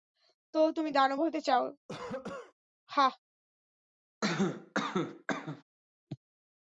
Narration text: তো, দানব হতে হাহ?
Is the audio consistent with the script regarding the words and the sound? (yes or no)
no